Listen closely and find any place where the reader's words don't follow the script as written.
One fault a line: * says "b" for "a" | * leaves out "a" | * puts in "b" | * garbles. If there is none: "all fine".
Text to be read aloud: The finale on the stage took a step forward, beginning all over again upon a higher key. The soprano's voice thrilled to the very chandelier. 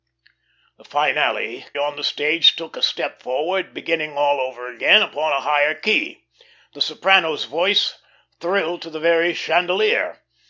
all fine